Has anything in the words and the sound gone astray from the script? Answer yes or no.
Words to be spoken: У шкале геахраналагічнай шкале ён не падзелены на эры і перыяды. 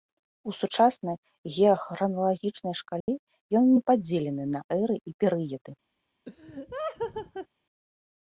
yes